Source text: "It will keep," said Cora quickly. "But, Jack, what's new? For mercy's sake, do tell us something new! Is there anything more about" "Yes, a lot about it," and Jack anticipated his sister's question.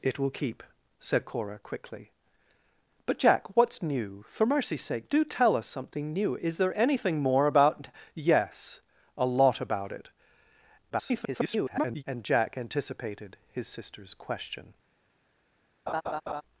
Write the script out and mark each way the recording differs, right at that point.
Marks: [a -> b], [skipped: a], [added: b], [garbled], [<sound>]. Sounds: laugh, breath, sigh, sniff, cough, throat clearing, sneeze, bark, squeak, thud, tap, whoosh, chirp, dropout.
"It will keep," said Cora quickly. "But, Jack, what's new? For mercy's sake, do tell us something new! Is there anything more about" "Yes, a lot about it," [garbled] and Jack anticipated his sister's question. [laugh]